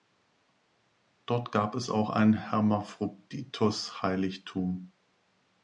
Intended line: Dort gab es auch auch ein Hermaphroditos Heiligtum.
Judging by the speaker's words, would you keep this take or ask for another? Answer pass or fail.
fail